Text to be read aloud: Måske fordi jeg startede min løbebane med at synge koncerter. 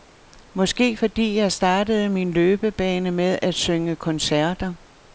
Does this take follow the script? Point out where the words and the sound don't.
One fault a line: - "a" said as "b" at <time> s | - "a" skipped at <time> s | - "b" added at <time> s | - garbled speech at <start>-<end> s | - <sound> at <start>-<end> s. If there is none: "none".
none